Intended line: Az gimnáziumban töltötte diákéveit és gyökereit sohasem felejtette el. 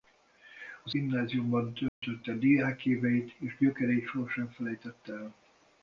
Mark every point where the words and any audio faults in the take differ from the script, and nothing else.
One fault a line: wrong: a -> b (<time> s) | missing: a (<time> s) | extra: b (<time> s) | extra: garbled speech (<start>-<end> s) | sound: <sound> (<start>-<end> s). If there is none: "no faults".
sound: dropout (1.9-2.0 s)